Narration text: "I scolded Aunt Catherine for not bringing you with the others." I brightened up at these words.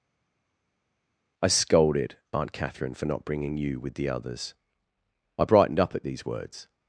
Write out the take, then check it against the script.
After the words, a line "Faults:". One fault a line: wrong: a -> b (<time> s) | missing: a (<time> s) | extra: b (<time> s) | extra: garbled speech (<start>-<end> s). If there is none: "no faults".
"I scolded Aunt Catherine for not bringing you with the others." I brightened up at these words.
Faults:
no faults